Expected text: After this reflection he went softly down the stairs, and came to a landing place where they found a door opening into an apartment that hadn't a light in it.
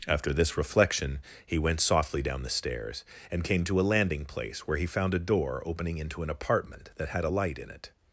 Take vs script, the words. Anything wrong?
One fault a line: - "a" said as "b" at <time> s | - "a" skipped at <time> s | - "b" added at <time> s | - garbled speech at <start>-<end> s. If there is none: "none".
- "they" said as "he" at 4.8 s
- "hadn't" said as "had" at 7.1 s